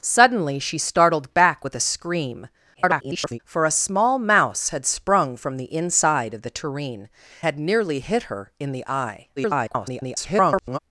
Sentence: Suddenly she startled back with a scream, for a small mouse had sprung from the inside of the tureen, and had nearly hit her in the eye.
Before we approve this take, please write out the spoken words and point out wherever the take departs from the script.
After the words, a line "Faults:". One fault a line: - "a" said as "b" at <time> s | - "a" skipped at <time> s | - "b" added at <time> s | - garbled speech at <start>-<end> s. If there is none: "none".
Suddenly she startled back with a scream, [garbled] for a small mouse had sprung from the inside of the tureen, had nearly hit her in the eye. [garbled]
Faults:
- garbled speech at 2.7-3.4 s
- "and" skipped at 7.1 s
- garbled speech at 9.4-10.8 s